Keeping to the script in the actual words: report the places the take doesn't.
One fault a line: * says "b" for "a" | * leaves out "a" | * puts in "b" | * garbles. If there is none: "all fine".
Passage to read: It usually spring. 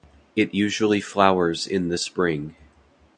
* puts in "flowers in the"